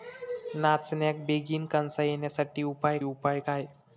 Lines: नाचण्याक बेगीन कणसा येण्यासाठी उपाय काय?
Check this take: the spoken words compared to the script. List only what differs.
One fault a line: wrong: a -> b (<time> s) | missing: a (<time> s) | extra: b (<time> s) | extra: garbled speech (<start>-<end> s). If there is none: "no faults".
extra: उपाय (3.0 s)